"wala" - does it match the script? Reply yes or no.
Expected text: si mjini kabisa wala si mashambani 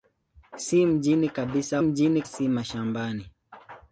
no